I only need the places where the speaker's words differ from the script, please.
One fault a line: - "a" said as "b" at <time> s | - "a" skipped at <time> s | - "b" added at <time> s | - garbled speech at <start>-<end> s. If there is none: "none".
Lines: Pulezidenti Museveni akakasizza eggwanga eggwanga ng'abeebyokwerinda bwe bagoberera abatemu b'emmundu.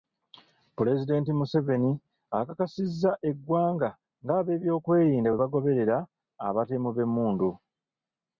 - "eggwanga" skipped at 3.9 s